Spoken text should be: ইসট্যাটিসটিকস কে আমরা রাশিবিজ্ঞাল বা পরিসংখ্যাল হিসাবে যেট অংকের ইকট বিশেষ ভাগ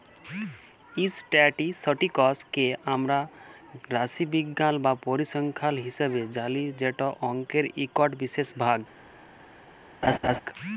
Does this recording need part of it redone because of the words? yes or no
yes